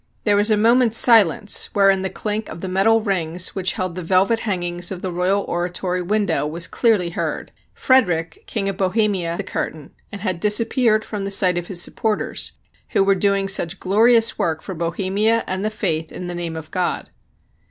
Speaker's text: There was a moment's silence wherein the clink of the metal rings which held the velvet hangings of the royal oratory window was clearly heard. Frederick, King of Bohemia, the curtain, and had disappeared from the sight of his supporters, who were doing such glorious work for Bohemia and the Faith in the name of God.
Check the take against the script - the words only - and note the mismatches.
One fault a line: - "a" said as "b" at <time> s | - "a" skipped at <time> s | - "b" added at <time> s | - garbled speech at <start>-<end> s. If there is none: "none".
none